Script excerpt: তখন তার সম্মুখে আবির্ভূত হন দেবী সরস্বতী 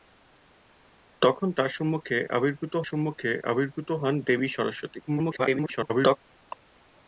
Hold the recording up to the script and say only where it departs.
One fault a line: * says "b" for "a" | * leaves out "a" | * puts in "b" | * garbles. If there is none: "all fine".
* puts in "সম্মুখে আবির্ভূত"
* garbles